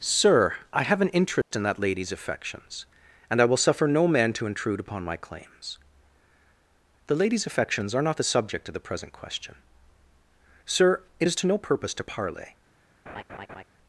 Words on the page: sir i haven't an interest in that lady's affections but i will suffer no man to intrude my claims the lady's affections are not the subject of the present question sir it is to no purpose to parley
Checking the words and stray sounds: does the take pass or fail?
fail